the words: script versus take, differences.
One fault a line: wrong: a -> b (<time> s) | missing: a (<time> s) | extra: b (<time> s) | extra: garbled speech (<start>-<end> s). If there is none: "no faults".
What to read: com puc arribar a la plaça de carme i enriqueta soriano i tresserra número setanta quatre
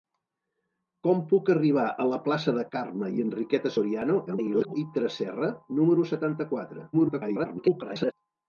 extra: garbled speech (4.3-4.7 s)
extra: garbled speech (6.9-8.1 s)